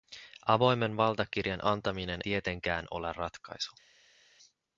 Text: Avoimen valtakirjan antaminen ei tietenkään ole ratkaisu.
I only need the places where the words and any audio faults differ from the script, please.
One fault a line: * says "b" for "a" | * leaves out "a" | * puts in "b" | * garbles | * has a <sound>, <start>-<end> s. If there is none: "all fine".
* leaves out "ei"